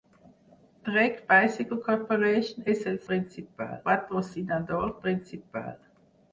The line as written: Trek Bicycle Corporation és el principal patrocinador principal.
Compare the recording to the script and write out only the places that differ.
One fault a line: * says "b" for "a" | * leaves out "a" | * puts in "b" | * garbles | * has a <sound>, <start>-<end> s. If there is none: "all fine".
all fine